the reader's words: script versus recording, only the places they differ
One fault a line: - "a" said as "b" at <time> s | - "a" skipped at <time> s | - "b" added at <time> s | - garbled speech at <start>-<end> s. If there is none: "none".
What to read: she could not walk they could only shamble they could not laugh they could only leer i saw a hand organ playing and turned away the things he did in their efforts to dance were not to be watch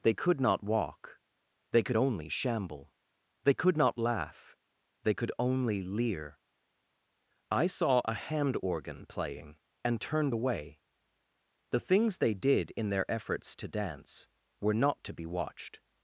- "she" said as "they" at 0.0 s
- "he" said as "they" at 12.2 s
- "watch" said as "watched" at 15.3 s